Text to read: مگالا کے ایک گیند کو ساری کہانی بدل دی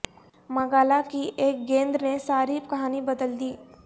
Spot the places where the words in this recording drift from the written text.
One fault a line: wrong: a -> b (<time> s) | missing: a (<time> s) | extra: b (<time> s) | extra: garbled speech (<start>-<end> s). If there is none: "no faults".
wrong: کے -> کی (1.1 s)
wrong: کو -> نے (2.0 s)